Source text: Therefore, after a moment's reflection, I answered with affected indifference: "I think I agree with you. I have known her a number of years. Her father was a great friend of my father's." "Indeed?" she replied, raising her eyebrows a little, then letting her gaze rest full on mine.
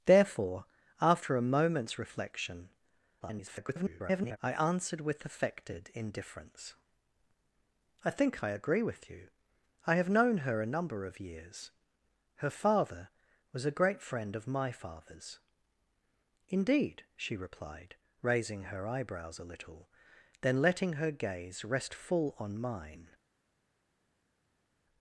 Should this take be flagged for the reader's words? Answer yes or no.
yes